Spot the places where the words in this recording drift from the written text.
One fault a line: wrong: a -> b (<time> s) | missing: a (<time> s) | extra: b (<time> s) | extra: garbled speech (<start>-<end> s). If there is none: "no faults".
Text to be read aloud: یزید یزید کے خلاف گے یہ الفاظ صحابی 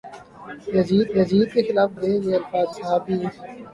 no faults